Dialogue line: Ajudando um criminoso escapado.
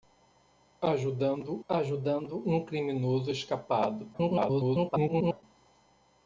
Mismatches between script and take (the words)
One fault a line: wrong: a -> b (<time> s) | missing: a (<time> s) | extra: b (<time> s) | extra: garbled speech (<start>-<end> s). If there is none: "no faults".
extra: ajudando (1.7 s)
extra: garbled speech (4.1-5.4 s)